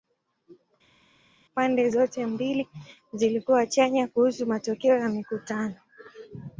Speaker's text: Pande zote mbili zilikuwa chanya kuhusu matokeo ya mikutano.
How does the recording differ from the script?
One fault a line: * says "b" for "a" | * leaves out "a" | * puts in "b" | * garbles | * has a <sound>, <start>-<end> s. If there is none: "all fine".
all fine